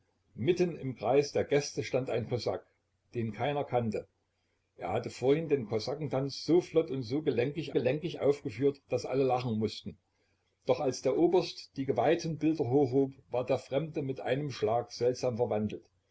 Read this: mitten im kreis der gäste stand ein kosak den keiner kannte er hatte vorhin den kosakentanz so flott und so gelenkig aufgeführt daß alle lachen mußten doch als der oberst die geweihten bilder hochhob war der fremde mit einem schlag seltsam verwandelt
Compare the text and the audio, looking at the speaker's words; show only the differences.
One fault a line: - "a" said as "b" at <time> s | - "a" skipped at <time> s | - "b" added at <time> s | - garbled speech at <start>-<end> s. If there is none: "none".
- "gelenkig" added at 7.7 s